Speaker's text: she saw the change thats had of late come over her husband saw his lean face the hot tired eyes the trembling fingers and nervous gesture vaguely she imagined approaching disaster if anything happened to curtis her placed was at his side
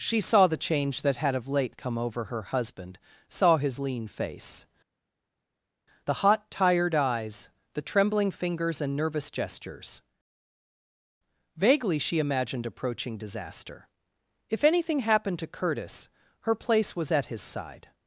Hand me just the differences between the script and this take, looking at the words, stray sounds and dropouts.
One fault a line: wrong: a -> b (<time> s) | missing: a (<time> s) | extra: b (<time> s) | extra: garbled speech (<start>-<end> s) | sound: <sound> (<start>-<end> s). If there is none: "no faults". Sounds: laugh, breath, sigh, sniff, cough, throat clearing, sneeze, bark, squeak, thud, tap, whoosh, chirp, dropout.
wrong: thats -> that (1.0 s)
wrong: gesture -> gestures (9.3 s)
wrong: placed -> place (16.5 s)